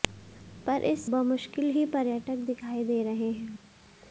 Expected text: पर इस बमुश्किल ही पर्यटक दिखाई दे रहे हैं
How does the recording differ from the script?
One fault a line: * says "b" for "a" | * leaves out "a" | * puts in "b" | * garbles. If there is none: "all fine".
all fine